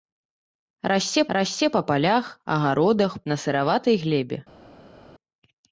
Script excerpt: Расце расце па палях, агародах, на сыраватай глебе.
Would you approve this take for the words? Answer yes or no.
yes